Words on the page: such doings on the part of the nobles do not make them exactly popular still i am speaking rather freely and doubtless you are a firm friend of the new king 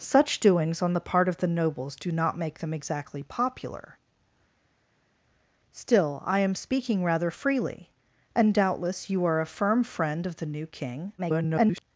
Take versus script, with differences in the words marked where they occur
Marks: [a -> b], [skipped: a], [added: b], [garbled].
such doings on the part of the nobles do not make them exactly popular still i am speaking rather freely and doubtless you are a firm friend of the new king [garbled]